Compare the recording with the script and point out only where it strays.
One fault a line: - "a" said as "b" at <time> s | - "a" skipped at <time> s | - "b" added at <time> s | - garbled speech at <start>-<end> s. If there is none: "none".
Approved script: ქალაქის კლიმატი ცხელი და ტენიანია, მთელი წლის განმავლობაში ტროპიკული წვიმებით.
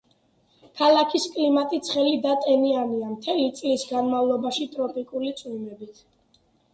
none